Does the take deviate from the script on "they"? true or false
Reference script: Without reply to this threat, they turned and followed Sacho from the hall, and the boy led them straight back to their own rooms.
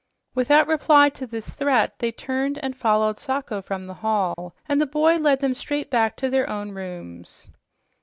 false